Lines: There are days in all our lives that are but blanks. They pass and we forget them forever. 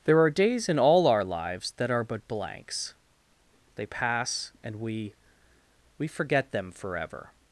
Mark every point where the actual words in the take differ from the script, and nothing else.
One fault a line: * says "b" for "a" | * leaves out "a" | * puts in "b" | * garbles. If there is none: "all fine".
* puts in "we"